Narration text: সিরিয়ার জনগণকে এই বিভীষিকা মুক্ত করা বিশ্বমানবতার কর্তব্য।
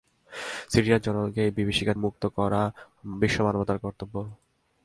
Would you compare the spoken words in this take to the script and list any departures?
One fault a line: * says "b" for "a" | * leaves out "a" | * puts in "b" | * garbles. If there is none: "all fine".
all fine